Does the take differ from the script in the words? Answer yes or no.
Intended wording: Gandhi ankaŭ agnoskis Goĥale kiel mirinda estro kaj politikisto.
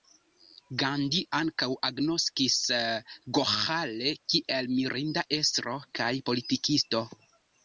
no